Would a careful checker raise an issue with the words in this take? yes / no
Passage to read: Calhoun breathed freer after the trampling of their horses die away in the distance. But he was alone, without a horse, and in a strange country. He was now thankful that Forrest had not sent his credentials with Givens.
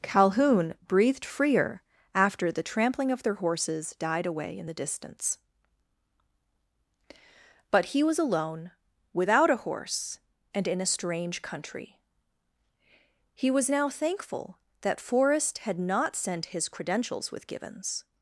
yes